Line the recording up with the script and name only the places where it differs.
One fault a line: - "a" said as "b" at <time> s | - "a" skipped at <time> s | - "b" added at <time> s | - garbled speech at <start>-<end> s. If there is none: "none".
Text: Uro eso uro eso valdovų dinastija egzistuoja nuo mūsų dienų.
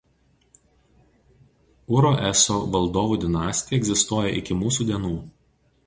- "uro eso" skipped at 2.6 s
- "nuo" said as "iki" at 4.4 s